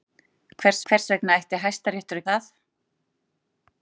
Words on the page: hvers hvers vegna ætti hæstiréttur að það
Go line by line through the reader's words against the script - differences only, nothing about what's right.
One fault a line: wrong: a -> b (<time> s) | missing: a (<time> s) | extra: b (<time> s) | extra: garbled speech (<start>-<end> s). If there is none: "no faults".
no faults